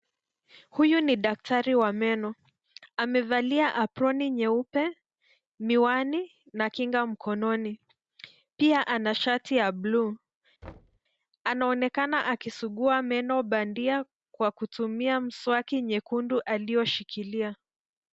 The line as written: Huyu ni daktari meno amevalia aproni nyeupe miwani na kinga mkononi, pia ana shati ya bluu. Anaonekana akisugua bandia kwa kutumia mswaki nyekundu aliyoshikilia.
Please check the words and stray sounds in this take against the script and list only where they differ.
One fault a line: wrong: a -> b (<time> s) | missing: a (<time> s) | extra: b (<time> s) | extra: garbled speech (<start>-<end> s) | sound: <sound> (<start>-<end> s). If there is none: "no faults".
extra: wa (1.8 s)
sound: thud (10.6-11.0 s)
extra: meno (13.0 s)